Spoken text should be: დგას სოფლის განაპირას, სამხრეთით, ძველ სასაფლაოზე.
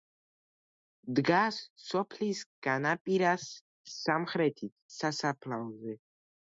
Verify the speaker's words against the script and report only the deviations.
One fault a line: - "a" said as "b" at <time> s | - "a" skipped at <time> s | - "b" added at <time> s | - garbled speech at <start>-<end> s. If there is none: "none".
- "ძველ" skipped at 4.7 s